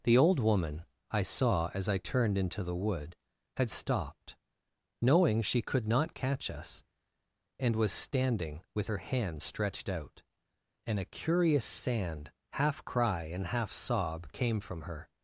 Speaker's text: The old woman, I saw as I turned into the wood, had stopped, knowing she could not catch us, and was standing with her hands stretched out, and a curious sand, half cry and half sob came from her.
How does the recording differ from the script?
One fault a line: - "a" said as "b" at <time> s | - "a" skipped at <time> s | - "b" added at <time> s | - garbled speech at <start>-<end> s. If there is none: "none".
none